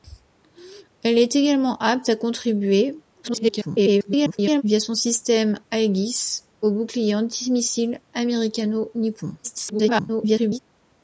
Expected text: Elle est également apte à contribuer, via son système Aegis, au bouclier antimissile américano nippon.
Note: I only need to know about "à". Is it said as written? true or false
true